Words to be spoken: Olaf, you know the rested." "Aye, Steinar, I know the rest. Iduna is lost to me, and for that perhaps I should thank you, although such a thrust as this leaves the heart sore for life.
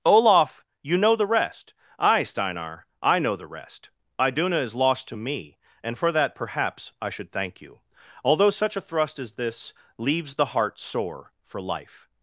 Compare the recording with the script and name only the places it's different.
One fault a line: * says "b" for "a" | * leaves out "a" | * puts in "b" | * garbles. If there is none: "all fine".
* says "rest" for "rested"